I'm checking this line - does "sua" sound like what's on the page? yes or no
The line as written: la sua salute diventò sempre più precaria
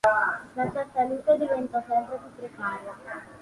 yes